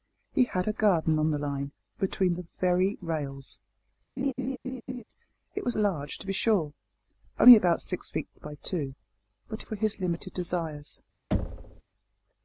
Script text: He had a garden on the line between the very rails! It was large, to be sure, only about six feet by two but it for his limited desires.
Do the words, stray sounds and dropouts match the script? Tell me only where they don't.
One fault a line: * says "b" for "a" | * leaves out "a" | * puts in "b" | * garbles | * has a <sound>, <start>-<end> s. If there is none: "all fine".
* has a laugh, 4.2-5.0 s
* has a thud, 11.3-11.8 s